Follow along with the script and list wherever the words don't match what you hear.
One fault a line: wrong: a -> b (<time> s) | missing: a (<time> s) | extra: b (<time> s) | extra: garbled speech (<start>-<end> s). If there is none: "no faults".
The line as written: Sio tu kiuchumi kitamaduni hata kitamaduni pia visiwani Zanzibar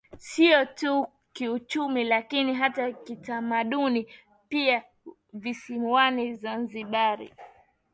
wrong: kitamaduni -> lakini (2.0 s)